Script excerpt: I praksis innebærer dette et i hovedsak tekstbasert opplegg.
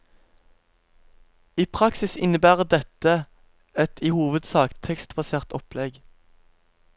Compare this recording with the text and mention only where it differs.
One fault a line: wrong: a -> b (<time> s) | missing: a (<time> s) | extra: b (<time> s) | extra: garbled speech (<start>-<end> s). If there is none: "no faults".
no faults